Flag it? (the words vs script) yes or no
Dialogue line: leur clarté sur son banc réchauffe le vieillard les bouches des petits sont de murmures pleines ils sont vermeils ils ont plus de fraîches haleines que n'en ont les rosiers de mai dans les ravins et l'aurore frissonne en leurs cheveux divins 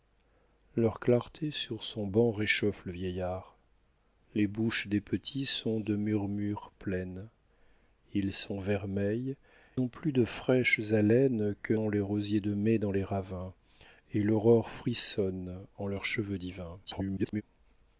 yes